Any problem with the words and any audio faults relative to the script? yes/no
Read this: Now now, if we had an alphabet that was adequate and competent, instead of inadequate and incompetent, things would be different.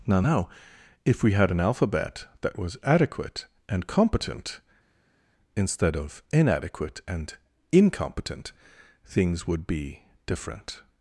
no